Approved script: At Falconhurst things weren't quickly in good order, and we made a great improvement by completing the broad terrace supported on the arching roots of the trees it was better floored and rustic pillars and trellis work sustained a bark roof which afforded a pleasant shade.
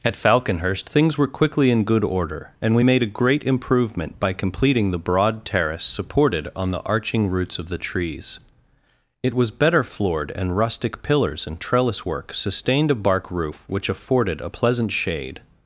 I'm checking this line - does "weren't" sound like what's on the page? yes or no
no